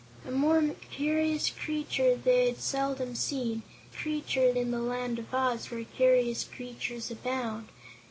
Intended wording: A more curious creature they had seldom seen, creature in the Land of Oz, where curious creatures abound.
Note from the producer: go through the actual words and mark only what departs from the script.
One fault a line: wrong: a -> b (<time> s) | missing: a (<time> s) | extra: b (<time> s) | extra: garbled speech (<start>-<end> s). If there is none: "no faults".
no faults